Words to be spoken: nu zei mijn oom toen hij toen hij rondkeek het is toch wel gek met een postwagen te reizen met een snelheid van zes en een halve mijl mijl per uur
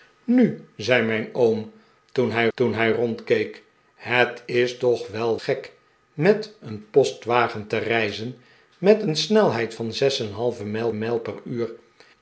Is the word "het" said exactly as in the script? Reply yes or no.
yes